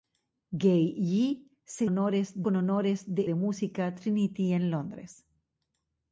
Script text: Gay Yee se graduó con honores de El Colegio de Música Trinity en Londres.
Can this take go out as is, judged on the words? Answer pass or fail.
fail